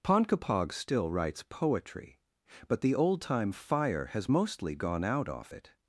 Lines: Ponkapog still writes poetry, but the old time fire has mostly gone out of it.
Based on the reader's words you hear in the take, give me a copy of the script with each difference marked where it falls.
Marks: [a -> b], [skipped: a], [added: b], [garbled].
Ponkapog still writes poetry, but the old time fire has mostly gone out [of -> off] it.